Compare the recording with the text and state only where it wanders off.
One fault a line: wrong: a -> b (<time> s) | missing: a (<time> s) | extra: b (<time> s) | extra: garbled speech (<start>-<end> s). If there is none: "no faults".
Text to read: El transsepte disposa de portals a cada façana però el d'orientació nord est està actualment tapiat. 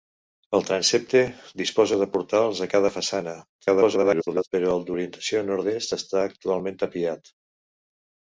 extra: garbled speech (3.6-4.5 s)